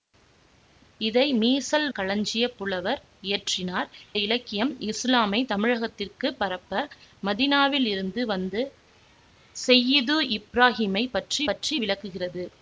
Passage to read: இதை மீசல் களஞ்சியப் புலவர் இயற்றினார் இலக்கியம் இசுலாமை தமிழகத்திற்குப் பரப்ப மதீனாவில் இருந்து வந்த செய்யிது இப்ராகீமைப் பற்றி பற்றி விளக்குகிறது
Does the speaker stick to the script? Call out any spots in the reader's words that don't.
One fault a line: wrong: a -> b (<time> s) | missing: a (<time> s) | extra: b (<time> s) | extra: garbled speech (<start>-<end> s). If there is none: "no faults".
no faults